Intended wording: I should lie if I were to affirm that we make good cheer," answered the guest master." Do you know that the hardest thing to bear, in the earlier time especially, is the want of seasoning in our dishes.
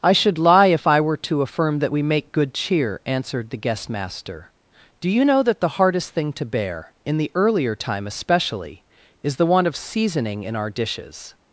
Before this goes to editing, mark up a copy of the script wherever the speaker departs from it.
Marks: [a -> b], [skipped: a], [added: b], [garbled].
I should lie if I were to affirm that we make good cheer," answered the guest master." Do you know that the hardest thing to bear, in the earlier time especially, is the want of seasoning in our dishes.